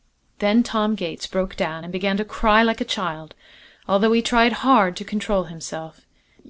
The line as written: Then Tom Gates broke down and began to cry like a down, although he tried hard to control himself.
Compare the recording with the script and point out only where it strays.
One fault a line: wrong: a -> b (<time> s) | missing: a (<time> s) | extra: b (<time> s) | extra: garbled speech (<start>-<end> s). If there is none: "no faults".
wrong: down -> child (2.8 s)